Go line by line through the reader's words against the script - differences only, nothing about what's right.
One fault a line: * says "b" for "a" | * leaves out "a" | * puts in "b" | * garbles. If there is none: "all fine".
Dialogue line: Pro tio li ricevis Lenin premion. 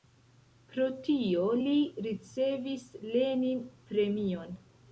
all fine